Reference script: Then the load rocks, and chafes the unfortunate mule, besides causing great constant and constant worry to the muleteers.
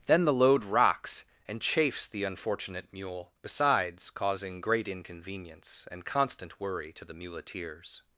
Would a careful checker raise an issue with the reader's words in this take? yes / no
yes